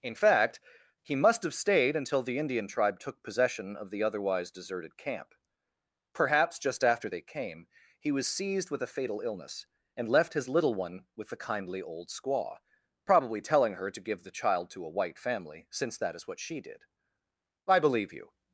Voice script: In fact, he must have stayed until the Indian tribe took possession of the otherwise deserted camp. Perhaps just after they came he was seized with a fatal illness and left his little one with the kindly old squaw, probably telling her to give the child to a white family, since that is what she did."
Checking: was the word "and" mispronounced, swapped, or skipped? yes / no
no